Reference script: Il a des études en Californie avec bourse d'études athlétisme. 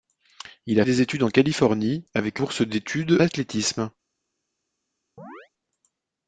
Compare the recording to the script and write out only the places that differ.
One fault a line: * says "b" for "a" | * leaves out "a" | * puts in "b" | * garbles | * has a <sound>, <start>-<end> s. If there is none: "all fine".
* has a chirp, 5.2-5.5 s